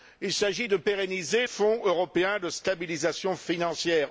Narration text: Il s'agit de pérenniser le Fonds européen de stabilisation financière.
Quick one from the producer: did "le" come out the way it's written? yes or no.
no